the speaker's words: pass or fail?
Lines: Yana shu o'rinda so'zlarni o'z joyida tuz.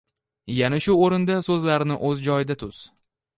pass